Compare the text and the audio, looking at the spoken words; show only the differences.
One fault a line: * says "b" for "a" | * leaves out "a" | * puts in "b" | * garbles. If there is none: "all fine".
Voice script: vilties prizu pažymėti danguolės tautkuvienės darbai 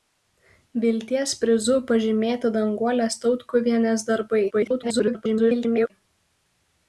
* garbles